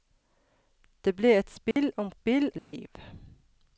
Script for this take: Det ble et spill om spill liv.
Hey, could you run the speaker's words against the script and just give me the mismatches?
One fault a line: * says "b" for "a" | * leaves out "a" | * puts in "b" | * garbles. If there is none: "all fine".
all fine